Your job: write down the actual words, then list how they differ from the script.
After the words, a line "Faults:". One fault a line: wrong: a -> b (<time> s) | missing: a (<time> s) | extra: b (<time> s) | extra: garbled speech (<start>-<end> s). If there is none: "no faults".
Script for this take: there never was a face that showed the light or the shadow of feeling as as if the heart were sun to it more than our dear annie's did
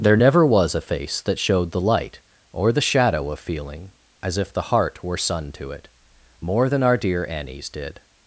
there never was a face that showed the light or the shadow of feeling as if the heart were sun to it more than our dear annie's did
Faults:
missing: as (4.4 s)